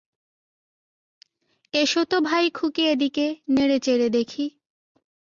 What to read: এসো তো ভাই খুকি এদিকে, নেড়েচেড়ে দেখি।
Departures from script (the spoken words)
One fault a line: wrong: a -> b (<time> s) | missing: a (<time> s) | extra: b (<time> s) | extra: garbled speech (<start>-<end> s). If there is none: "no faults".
no faults